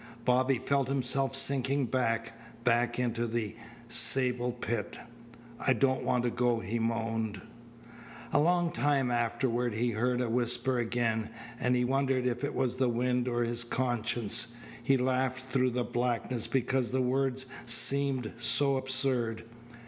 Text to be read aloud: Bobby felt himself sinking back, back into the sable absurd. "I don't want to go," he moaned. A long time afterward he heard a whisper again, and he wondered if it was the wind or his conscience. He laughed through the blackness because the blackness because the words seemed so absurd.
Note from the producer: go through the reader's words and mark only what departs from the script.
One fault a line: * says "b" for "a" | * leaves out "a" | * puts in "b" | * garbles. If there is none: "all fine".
* says "pit" for "absurd"
* leaves out "blackness because the"